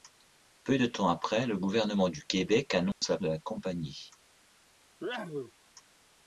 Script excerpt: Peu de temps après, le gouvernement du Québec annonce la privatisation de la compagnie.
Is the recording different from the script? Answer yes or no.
yes